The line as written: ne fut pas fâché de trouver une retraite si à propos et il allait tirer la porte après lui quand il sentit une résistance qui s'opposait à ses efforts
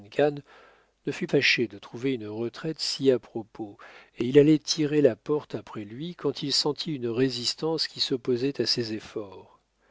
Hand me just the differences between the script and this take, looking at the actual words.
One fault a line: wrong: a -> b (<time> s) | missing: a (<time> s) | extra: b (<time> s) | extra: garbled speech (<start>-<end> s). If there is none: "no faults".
missing: pas (1.3 s)